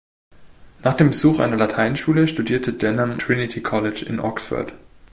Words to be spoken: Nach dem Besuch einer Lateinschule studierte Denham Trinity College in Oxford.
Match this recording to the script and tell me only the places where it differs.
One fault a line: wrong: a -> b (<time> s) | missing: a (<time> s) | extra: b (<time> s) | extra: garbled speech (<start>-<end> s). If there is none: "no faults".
no faults